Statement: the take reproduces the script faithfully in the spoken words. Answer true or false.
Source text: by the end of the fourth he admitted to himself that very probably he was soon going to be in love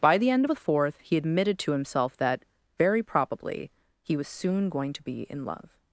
true